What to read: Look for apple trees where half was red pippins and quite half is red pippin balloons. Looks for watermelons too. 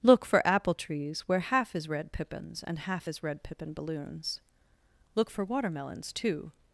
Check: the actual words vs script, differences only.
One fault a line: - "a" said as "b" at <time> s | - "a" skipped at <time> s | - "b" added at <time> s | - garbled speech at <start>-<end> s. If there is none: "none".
- "was" said as "is" at 1.8 s
- "quite" skipped at 2.8 s
- "Looks" said as "Look" at 5.1 s